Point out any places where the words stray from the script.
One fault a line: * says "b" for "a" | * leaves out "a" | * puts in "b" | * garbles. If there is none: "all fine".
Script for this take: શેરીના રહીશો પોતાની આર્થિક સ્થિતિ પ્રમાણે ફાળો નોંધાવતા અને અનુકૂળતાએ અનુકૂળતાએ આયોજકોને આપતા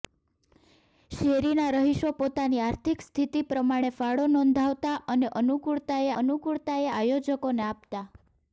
all fine